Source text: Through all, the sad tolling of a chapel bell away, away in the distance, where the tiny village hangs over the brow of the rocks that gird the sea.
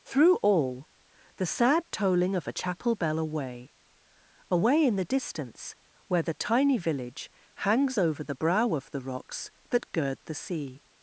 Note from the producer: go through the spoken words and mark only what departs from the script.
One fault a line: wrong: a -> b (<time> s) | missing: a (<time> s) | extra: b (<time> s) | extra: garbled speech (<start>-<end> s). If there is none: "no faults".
no faults